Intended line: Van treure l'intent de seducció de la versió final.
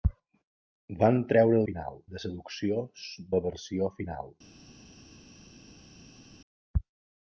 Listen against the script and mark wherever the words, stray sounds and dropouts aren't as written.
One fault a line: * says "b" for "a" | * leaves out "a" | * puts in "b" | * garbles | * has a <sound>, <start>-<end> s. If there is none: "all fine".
* says "final" for "l'intent"
* leaves out "de"